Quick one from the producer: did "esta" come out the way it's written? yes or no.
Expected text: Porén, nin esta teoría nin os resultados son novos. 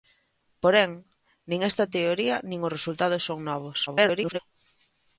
yes